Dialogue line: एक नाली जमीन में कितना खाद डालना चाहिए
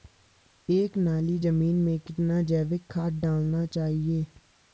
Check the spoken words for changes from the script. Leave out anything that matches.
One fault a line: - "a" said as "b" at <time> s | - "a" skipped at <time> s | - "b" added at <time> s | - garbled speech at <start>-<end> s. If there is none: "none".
- "जैविक" added at 2.4 s